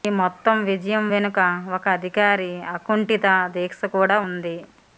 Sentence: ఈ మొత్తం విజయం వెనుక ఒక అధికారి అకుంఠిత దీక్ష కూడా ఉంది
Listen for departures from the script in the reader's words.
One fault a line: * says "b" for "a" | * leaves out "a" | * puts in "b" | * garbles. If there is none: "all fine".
all fine